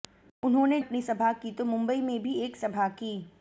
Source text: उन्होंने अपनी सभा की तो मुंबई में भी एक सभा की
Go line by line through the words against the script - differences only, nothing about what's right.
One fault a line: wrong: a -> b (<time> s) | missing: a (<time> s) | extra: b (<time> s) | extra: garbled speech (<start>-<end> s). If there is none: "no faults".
no faults